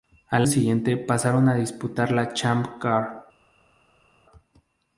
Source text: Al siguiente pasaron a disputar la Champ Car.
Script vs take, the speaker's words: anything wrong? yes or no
no